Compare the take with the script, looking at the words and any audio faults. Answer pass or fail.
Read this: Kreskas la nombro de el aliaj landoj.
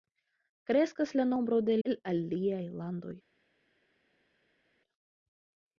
pass